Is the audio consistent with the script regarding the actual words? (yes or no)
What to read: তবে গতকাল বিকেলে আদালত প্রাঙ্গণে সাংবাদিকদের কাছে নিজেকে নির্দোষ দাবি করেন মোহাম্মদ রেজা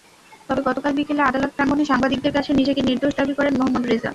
yes